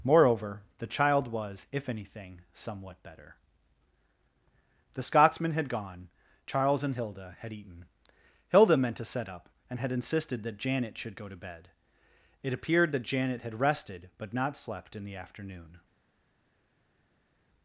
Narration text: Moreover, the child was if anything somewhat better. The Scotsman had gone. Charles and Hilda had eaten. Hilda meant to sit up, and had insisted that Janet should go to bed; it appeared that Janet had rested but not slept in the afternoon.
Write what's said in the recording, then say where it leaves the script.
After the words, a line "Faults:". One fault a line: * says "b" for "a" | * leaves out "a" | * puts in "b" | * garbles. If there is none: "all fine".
Moreover, the child was if anything somewhat better. The Scotsman had gone. Charles and Hilda had eaten. Hilda meant to set up, and had insisted that Janet should go to bed; it appeared that Janet had rested but not slept in the afternoon.
Faults:
* says "set" for "sit"